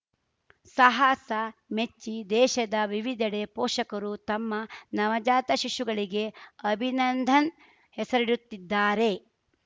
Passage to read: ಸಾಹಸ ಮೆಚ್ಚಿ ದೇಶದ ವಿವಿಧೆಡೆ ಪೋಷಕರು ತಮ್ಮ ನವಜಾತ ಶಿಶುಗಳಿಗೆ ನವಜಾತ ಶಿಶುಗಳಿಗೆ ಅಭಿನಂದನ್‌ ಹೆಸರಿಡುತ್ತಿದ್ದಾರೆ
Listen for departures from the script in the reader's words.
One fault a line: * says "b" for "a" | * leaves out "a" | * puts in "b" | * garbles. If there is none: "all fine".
* leaves out "ನವಜಾತ ಶಿಶುಗಳಿಗೆ"